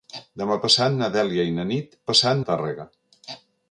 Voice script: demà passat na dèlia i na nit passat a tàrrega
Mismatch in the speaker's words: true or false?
false